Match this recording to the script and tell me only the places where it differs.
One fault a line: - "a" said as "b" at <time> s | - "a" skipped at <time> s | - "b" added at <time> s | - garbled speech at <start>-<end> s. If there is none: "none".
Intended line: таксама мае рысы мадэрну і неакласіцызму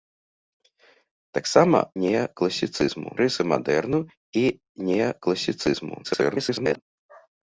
- "мае" said as "неакласіцызму" at 2.0 s
- garbled speech at 6.0-6.8 s